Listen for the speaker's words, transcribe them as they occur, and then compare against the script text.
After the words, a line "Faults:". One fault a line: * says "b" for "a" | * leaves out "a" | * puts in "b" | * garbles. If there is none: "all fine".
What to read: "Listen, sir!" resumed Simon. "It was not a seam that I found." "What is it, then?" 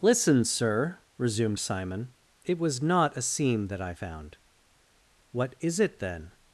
"Listen, sir!" resumed Simon. "It was not a seam that I found." "What is it, then?"
Faults:
all fine